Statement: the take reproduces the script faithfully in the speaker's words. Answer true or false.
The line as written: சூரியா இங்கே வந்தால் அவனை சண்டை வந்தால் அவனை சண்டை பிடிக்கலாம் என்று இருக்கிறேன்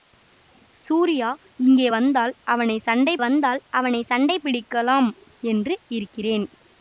true